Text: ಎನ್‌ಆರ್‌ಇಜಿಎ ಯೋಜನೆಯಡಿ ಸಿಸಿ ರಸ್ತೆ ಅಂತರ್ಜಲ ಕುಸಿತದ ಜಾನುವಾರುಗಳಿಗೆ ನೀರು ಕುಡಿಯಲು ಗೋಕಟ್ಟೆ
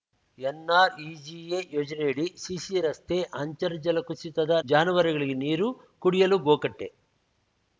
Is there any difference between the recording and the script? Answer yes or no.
no